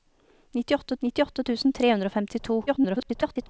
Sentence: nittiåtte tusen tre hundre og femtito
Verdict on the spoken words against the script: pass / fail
fail